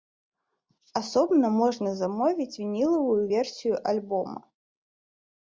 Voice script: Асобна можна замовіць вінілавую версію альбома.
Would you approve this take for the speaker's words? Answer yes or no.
yes